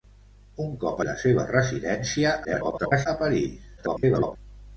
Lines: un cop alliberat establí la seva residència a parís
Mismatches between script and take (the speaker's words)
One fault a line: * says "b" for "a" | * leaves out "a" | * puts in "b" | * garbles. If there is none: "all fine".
* leaves out "alliberat establí"
* garbles
* garbles